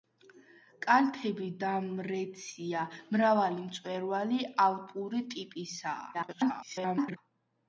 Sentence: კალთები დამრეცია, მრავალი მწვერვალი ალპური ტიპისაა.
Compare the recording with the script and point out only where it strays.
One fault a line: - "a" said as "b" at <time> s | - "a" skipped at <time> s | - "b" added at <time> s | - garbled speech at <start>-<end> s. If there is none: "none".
- garbled speech at 6.1-7.2 s